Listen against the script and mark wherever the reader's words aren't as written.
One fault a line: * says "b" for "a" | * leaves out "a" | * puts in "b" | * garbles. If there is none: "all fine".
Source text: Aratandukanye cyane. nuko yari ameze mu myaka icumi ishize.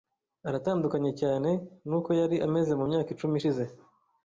all fine